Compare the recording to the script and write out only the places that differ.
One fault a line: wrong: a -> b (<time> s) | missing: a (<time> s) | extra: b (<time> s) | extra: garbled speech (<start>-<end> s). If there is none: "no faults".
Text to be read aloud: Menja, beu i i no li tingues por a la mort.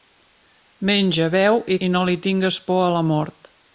no faults